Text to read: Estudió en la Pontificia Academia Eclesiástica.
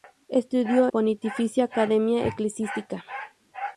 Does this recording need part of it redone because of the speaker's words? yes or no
yes